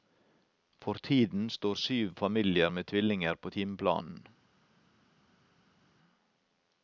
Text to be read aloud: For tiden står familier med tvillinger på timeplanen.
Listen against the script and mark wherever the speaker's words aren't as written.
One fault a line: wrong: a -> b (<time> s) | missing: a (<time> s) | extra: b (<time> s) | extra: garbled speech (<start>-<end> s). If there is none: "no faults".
extra: syv (1.8 s)